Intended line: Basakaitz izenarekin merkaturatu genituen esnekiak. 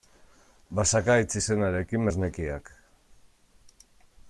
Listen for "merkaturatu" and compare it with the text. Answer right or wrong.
wrong